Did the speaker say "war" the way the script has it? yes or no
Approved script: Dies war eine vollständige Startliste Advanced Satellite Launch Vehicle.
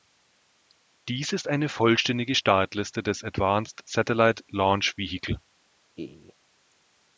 no